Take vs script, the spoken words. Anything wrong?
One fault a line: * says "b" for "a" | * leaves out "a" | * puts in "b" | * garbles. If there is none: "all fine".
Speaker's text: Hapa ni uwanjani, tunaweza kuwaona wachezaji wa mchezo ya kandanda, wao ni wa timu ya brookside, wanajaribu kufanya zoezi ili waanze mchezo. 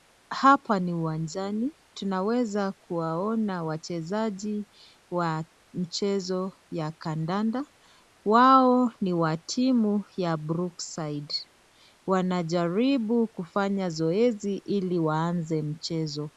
all fine